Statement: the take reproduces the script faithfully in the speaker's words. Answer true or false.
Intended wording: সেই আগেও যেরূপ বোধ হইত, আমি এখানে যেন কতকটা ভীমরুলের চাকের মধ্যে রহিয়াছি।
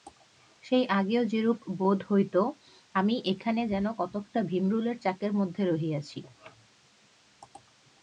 true